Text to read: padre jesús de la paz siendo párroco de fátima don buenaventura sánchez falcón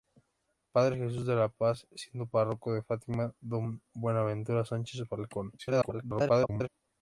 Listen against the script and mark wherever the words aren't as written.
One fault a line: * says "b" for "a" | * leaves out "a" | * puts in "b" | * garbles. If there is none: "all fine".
* garbles